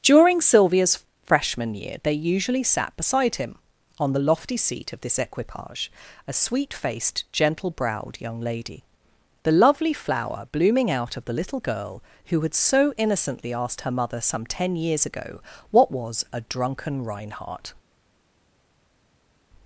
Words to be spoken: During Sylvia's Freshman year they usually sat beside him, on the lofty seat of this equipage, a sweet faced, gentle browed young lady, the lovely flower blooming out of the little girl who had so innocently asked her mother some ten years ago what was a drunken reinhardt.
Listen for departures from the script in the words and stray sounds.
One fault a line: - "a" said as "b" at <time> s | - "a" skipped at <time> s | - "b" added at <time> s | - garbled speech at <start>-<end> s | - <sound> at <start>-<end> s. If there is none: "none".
none